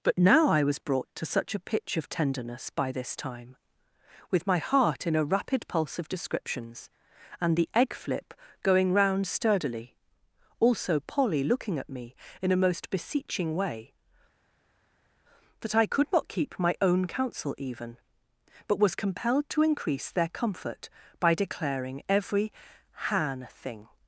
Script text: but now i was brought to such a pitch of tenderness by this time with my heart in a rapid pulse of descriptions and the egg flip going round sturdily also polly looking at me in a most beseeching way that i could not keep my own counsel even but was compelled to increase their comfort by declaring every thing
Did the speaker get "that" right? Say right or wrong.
right